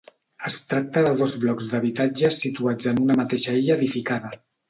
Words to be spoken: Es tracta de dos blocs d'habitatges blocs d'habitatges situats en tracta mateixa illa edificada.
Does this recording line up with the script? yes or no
no